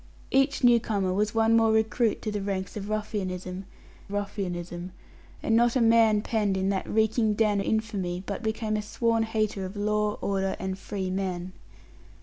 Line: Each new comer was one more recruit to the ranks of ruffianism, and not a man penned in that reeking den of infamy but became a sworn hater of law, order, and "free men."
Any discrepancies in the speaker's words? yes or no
yes